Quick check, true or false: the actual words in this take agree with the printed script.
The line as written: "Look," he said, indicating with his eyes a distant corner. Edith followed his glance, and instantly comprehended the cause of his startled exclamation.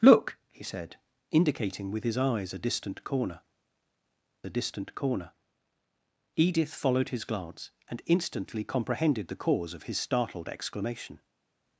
false